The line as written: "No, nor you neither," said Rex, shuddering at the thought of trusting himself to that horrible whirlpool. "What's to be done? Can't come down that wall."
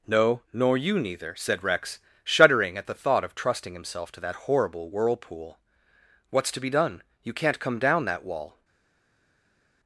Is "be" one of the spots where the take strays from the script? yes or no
no